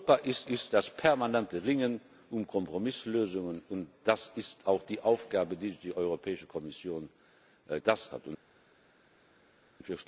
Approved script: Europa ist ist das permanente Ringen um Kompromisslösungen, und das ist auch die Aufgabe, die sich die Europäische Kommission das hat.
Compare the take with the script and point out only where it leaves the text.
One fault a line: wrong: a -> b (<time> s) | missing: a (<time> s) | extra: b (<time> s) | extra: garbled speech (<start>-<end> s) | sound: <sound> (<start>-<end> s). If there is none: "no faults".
no faults